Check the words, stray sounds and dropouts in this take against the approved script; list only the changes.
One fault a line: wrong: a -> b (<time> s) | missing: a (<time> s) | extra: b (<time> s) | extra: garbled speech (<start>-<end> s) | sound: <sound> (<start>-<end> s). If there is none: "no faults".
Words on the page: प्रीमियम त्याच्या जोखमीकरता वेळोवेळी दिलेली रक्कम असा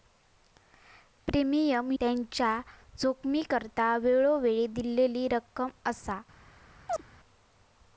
sound: chirp (6.9-7.0 s)